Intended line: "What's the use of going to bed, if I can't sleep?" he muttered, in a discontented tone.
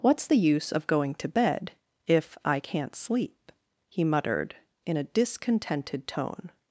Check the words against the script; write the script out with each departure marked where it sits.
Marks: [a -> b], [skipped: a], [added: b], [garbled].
"What's the use of going to bed, if I can't sleep?" he muttered, in a discontented tone.